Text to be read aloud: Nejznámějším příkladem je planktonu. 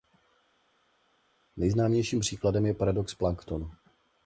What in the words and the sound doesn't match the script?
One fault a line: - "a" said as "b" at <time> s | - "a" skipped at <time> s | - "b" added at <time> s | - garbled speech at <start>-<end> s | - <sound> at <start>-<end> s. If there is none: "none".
- "paradox" added at 2.7 s